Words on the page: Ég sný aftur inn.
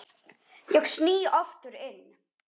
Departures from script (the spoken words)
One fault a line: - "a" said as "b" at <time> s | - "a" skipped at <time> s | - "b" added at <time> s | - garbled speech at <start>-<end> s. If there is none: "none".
none